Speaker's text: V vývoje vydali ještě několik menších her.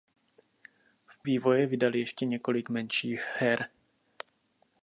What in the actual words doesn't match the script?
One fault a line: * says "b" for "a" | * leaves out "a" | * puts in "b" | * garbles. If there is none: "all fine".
all fine